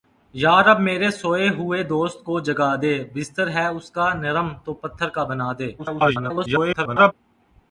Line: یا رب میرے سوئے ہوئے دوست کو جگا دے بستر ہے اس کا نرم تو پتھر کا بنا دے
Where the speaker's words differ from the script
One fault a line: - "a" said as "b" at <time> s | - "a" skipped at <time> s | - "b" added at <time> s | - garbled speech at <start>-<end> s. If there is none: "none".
- garbled speech at 5.8-7.1 s